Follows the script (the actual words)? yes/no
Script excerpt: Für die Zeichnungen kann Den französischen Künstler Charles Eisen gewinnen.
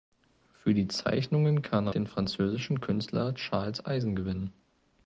yes